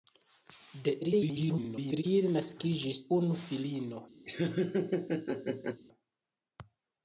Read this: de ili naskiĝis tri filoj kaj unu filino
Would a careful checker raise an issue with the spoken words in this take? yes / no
yes